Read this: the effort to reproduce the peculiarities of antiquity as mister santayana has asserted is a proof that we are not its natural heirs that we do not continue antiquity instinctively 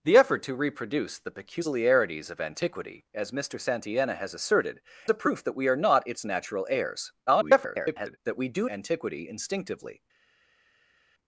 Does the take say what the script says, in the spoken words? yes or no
no